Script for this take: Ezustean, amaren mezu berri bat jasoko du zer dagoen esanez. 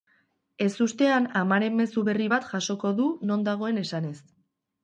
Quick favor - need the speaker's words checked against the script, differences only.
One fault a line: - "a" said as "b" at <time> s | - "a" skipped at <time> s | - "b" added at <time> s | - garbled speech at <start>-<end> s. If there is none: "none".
- "zer" said as "non" at 3.3 s